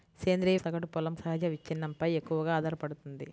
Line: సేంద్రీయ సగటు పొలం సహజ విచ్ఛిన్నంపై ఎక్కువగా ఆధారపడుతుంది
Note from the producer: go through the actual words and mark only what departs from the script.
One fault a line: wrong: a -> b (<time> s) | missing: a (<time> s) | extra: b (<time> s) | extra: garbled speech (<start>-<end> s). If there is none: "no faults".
no faults